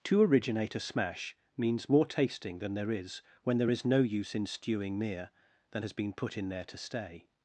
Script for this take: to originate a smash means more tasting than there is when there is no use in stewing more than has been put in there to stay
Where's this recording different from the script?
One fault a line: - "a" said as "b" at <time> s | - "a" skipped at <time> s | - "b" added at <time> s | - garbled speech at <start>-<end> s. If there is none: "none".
- "more" said as "mere" at 5.0 s